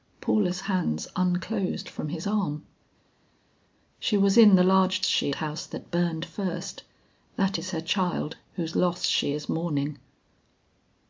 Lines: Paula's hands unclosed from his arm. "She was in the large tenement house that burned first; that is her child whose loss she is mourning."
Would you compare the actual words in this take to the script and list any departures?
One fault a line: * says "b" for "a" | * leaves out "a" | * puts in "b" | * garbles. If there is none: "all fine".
* says "she" for "tenement"